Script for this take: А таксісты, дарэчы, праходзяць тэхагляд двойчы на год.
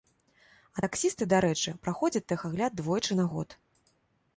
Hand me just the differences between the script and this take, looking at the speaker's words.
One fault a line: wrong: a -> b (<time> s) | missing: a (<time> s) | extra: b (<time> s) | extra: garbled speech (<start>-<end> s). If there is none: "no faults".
no faults